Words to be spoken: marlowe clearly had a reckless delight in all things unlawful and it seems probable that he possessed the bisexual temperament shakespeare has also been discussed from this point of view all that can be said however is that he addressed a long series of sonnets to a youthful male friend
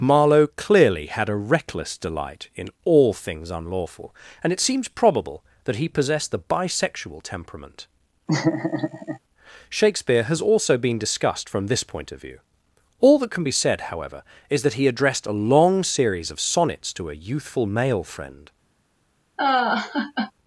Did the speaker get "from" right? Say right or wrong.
right